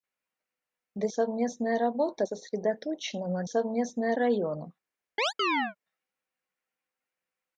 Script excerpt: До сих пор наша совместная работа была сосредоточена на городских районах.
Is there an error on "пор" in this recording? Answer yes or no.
yes